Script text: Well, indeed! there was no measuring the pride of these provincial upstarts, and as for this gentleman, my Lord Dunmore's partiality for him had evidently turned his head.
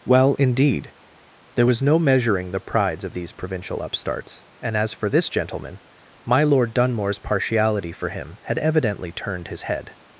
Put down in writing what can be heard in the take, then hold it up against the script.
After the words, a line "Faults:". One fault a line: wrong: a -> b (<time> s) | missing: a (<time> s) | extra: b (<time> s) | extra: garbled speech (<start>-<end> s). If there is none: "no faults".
Well, indeed! there was no measuring the prides of these provincial upstarts, and as for this gentleman, my Lord Dunmore's partiality for him had evidently turned his head.
Faults:
wrong: pride -> prides (2.6 s)